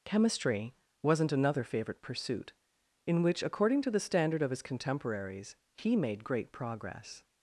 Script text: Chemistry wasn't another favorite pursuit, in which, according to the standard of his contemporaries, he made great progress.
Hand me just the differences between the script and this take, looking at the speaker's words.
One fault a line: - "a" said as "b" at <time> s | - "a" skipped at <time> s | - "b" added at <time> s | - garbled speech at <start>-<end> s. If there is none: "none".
none